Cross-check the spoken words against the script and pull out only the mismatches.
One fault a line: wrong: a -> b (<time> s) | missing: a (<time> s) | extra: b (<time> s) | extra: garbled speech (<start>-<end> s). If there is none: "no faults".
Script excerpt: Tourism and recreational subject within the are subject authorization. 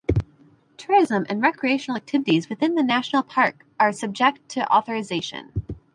wrong: subject -> activities (1.9 s)
extra: national park (2.8 s)
extra: to (4.5 s)